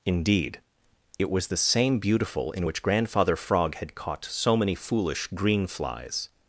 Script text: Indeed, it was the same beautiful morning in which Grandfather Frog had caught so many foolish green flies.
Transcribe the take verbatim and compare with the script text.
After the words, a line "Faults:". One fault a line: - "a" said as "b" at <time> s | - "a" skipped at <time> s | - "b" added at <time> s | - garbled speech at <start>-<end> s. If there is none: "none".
Indeed, it was the same beautiful in which Grandfather Frog had caught so many foolish green flies.
Faults:
- "morning" skipped at 2.5 s